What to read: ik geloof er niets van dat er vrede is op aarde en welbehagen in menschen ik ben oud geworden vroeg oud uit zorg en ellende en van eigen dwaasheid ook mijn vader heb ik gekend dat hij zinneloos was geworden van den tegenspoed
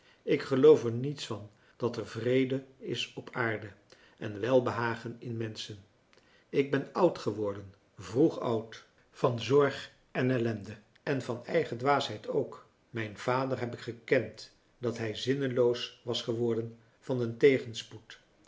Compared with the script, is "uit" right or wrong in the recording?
wrong